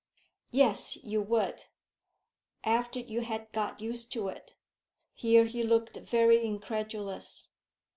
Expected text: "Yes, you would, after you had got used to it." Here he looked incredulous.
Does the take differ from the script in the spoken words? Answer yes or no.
yes